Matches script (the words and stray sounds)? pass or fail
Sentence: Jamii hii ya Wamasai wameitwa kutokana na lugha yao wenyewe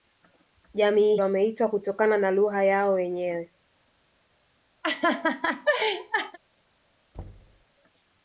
fail